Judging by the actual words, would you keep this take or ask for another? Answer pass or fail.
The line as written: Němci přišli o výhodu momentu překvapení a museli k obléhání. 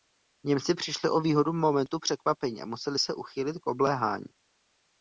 fail